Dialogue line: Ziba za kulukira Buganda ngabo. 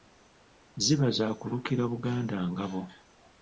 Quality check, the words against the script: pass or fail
pass